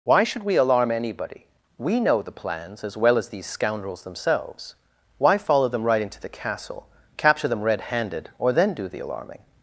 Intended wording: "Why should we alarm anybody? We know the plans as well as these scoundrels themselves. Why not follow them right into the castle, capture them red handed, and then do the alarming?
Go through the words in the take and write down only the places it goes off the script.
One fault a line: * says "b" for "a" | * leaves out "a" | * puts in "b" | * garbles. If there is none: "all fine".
* leaves out "not"
* says "or" for "and"